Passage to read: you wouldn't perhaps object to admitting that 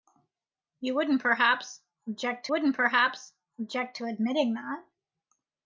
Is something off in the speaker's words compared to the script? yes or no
yes